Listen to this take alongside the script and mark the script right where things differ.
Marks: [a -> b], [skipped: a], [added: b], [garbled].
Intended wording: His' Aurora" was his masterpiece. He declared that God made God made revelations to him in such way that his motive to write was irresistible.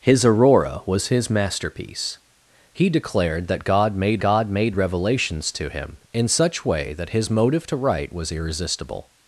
His' Aurora" was his masterpiece. He declared that God made God made revelations to him in such way that his motive to write was irresistible.